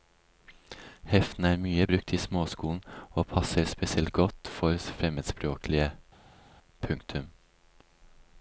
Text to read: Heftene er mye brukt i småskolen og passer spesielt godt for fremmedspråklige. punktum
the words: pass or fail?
pass